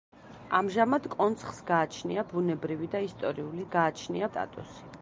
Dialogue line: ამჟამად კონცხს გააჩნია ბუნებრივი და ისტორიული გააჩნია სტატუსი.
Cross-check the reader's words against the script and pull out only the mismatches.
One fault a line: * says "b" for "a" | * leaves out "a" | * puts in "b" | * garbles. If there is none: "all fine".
all fine